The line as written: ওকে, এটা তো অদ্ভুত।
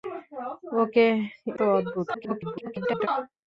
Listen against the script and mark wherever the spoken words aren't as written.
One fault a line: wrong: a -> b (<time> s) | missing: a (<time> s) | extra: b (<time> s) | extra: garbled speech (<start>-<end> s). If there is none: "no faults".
missing: এটা (1.1 s)
extra: garbled speech (2.1-3.1 s)